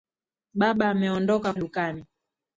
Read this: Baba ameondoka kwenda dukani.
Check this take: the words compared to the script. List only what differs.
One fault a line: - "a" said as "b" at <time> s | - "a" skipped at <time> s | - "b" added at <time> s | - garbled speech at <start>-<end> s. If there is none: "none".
- "kwenda" skipped at 1.5 s